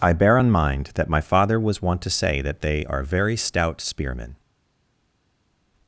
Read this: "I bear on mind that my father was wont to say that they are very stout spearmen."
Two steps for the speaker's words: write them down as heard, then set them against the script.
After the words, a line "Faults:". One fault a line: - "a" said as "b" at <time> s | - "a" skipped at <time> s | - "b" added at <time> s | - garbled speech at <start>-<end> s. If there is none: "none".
"I bear on mind that my father was wont to say that they are very stout spearmen."
Faults:
none